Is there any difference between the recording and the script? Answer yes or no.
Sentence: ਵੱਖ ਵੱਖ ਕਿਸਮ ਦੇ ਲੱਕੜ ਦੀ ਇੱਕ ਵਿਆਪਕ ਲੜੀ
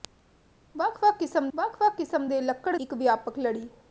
yes